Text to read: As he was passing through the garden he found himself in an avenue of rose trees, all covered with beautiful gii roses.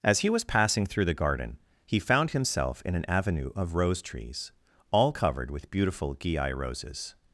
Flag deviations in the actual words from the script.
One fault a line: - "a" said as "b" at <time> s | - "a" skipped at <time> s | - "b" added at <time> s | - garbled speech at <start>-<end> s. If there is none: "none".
none